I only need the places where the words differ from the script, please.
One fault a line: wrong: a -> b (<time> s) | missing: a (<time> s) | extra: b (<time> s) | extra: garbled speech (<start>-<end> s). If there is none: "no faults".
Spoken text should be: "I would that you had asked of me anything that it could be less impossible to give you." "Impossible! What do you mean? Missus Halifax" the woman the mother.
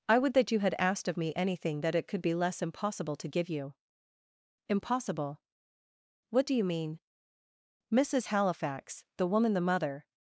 no faults